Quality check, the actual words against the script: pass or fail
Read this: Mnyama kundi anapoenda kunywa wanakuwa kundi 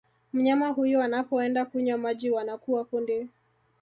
fail